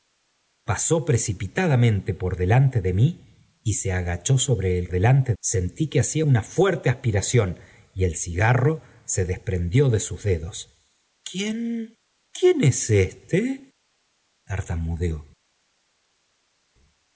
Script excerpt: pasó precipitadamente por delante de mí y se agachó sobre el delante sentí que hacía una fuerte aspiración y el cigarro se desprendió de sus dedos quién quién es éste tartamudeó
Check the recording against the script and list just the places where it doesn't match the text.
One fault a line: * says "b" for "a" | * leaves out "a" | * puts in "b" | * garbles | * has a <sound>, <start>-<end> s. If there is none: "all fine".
all fine